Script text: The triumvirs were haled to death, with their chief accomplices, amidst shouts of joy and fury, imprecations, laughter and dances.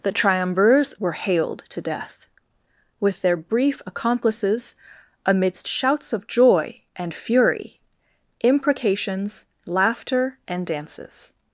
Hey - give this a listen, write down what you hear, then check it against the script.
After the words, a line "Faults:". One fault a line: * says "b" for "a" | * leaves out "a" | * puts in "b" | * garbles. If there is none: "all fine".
The triumvirs were haled to death, with their brief accomplices, amidst shouts of joy and fury, imprecations, laughter and dances.
Faults:
* says "brief" for "chief"